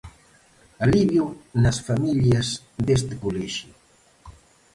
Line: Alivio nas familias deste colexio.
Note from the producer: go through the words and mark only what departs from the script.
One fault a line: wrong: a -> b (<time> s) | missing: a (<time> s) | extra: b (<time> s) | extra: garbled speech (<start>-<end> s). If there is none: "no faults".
no faults